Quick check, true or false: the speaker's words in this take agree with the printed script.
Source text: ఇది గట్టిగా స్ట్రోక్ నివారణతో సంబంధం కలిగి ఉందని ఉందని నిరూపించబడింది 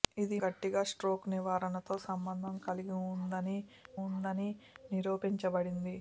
true